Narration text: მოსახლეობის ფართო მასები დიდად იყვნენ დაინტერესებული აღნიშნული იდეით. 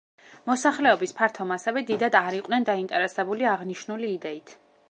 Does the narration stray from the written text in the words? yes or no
yes